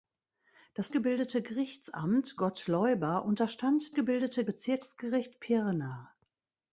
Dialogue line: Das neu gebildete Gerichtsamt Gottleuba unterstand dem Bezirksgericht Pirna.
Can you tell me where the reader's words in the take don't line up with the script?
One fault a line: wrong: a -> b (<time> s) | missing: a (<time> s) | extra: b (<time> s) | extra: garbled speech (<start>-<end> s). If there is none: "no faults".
missing: neu (0.9 s)
wrong: dem -> gebildete (3.9 s)